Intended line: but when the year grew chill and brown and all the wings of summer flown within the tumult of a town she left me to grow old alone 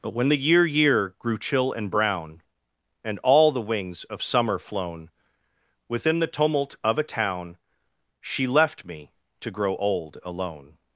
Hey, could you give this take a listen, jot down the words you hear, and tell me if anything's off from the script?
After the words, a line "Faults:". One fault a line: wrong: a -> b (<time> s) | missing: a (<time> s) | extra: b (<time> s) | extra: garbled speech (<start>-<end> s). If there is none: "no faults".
but when the year year grew chill and brown and all the wings of summer flown within the tumult of a town she left me to grow old alone
Faults:
extra: year (0.7 s)